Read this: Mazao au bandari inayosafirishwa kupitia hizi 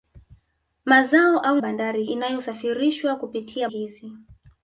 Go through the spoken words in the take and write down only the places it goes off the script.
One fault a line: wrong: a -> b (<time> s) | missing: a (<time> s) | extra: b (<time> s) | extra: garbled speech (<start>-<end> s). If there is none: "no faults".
no faults